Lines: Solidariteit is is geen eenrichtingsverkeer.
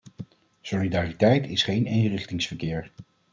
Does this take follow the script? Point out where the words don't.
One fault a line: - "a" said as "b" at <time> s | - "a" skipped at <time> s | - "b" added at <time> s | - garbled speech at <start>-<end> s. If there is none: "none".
- "is" skipped at 1.6 s